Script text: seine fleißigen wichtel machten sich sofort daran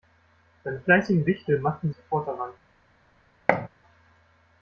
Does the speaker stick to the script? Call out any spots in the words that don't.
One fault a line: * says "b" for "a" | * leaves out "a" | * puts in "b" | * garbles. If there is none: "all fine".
* leaves out "sich"